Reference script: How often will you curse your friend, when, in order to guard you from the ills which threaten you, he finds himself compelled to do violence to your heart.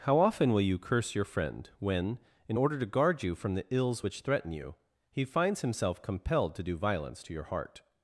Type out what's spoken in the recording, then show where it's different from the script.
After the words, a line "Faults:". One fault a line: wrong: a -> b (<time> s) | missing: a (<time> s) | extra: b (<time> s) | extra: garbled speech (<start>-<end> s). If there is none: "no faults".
How often will you curse your friend, when, in order to guard you from the ills which threaten you, he finds himself compelled to do violence to your heart.
Faults:
no faults